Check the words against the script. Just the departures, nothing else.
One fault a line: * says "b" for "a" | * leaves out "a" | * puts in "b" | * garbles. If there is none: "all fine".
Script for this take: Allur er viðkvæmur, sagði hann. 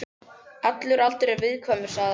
* puts in "aldur"